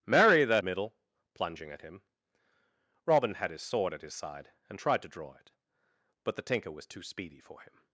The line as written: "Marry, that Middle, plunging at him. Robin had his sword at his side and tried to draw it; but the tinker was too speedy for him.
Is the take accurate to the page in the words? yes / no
yes